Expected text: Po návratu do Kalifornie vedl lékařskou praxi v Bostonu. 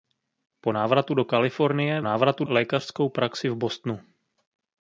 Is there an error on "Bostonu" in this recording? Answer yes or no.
no